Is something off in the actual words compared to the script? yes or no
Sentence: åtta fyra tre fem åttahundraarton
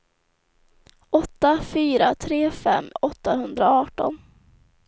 no